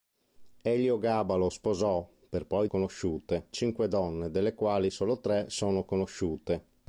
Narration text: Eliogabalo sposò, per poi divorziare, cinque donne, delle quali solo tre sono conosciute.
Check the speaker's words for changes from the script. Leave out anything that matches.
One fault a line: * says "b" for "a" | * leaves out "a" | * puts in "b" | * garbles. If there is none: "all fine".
* says "conosciute" for "divorziare"